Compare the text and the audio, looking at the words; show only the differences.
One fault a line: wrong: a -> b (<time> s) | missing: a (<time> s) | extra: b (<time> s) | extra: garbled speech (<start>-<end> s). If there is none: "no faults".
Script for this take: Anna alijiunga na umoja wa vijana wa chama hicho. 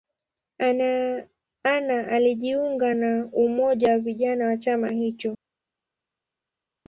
no faults